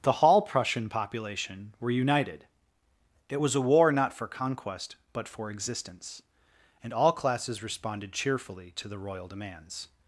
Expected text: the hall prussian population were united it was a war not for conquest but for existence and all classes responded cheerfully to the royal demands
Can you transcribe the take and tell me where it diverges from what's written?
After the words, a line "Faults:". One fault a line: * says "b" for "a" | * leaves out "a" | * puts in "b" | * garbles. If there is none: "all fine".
the hall prussian population were united it was a war not for conquest but for existence and all classes responded cheerfully to the royal demands
Faults:
all fine